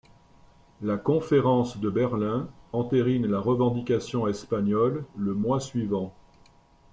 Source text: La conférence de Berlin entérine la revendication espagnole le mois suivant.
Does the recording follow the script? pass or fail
pass